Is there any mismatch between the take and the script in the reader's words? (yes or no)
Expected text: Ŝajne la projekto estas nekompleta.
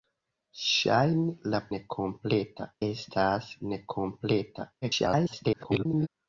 yes